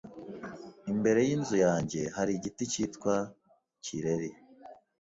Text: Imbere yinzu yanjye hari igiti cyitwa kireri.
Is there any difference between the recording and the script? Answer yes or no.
no